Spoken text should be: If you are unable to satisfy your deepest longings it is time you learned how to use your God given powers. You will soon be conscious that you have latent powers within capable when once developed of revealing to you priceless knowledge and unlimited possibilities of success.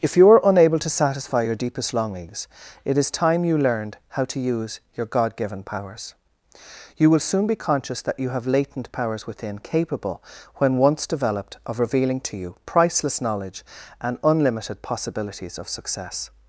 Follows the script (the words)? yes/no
yes